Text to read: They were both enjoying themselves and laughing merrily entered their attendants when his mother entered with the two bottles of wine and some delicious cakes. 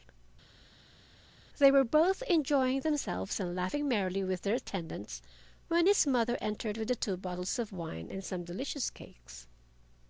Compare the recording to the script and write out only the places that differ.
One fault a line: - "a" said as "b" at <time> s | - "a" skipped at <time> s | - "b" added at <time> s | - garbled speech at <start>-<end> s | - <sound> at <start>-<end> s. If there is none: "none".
- "entered" said as "with" at 4.2 s